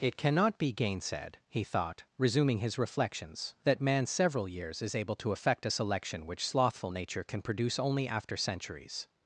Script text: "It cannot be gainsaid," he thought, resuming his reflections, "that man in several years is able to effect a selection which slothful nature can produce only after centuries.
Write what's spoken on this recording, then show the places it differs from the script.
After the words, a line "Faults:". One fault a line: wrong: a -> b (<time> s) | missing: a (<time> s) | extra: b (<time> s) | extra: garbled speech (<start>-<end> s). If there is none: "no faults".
"It cannot be gainsaid," he thought, resuming his reflections, "that man several years is able to effect a selection which slothful nature can produce only after centuries.
Faults:
missing: in (4.1 s)